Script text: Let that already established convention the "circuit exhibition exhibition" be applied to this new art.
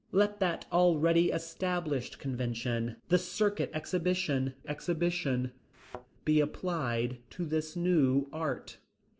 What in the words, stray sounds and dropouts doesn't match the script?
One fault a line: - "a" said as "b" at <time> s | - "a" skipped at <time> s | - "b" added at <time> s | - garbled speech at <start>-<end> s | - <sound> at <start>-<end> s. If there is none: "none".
- thud at 5.7-6.1 s